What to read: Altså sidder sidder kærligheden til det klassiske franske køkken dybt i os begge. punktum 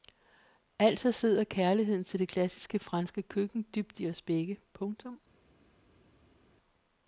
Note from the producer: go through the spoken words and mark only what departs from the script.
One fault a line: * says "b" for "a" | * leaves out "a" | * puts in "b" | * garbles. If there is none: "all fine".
* leaves out "sidder"